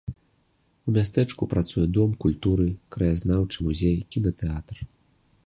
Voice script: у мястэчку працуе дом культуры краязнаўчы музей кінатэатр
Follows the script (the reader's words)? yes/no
yes